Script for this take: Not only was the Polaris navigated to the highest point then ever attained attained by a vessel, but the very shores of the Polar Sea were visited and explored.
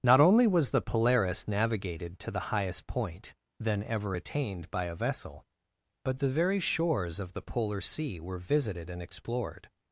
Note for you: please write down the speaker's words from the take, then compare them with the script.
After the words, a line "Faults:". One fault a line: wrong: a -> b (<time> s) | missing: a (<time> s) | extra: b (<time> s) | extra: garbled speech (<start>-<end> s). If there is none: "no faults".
Not only was the Polaris navigated to the highest point then ever attained by a vessel, but the very shores of the Polar Sea were visited and explored.
Faults:
missing: attained (4.7 s)